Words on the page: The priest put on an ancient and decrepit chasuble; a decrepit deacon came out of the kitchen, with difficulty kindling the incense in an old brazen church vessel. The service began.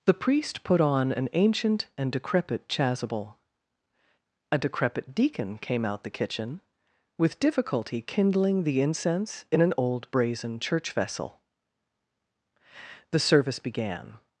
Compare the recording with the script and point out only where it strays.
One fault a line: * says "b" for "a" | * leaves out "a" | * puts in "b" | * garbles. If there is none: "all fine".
* leaves out "of"